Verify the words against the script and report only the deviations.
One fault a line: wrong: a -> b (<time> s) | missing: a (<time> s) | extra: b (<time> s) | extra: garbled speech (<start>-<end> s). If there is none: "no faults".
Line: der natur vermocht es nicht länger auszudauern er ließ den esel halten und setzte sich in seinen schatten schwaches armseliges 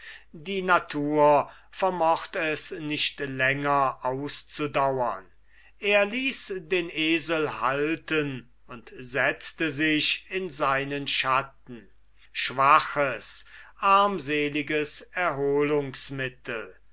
wrong: der -> die (0.3 s)